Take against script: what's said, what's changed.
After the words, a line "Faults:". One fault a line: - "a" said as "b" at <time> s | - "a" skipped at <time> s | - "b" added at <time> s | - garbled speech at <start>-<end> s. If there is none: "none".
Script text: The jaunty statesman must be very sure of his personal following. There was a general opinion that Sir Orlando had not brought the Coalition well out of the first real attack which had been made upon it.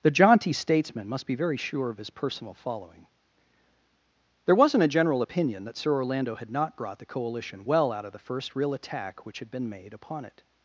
The jaunty statesman must be very sure of his personal following. There wasn't a general opinion that Sir Orlando had not brought the Coalition well out of the first real attack which had been made upon it.
Faults:
- "was" said as "wasn't" at 4.5 s